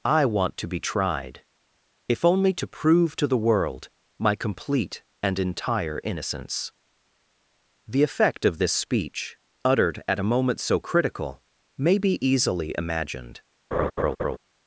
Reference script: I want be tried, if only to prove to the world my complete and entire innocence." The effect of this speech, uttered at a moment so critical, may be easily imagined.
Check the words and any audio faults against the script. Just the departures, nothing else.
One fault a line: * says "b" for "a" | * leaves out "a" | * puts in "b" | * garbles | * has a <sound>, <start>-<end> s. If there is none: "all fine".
* puts in "to"
* has a laugh, 13.7-14.4 s